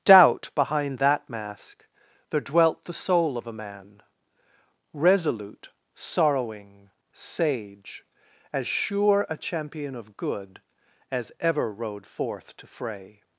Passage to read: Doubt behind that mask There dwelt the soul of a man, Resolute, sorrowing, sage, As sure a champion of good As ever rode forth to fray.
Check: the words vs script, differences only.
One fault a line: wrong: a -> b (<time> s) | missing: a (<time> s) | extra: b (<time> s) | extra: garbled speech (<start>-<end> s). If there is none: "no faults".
no faults